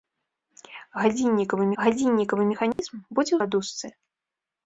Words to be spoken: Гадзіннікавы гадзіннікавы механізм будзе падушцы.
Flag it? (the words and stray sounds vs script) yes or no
yes